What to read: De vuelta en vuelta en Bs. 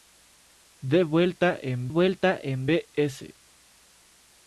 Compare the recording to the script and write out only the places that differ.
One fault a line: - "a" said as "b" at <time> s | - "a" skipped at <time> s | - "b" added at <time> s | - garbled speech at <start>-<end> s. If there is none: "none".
none